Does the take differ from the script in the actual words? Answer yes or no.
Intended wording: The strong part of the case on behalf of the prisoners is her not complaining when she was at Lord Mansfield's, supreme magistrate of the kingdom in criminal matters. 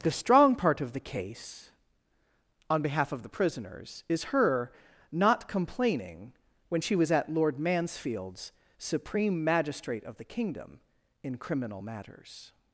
no